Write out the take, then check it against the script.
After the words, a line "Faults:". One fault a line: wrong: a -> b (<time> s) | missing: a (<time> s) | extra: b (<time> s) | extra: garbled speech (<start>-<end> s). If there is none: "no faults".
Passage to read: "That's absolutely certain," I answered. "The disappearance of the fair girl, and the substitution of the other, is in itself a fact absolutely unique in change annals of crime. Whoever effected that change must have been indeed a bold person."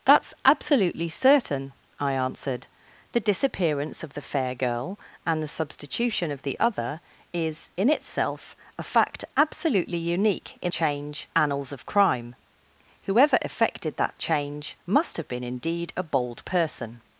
"That's absolutely certain," I answered. "The disappearance of the fair girl, and the substitution of the other, is in itself a fact absolutely unique in change annals of crime. Whoever effected that change must have been indeed a bold person."
Faults:
no faults